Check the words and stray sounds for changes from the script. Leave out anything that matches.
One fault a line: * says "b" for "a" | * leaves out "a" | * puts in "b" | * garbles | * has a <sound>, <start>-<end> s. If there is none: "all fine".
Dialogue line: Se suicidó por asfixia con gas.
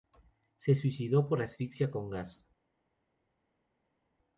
all fine